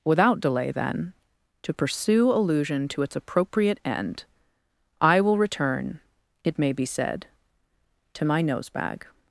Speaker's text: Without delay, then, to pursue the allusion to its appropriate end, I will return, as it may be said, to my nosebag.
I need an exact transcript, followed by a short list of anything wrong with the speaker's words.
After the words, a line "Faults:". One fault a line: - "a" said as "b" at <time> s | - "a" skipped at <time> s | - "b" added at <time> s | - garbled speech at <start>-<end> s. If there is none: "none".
Without delay, then, to pursue allusion to its appropriate end, I will return, it may be said, to my nosebag.
Faults:
- "the" skipped at 2.3 s
- "as" skipped at 6.0 s